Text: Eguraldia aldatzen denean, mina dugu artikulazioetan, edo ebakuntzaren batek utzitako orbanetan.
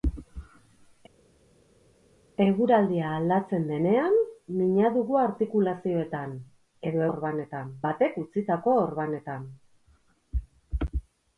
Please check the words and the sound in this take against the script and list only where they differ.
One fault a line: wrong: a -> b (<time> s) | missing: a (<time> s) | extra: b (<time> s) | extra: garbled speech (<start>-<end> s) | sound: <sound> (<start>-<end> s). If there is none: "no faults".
wrong: ebakuntzaren -> orbanetan (7.1 s)